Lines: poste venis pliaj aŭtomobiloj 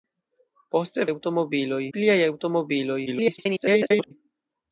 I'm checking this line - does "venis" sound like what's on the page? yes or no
no